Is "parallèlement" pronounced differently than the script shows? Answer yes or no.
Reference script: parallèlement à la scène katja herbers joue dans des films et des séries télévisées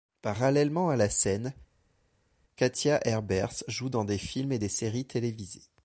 no